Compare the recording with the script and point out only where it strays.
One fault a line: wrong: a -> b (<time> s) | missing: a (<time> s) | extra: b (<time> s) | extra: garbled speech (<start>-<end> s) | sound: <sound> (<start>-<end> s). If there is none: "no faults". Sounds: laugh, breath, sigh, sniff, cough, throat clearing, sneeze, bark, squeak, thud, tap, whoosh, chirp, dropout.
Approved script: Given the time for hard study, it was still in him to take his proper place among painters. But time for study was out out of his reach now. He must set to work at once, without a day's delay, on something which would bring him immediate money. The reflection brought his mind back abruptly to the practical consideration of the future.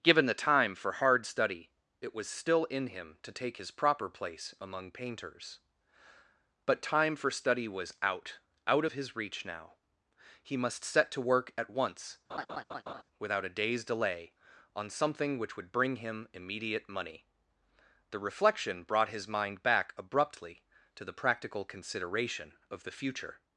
sound: laugh (12.3-13.0 s)